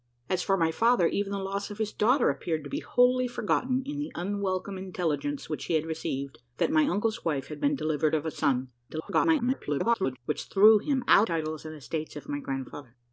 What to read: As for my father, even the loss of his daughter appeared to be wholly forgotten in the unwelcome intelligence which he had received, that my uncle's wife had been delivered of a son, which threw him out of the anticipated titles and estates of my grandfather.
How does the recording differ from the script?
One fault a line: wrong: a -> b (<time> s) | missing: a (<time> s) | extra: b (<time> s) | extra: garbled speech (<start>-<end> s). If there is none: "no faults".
extra: garbled speech (8.9-10.2 s)
missing: of the anticipated (11.3 s)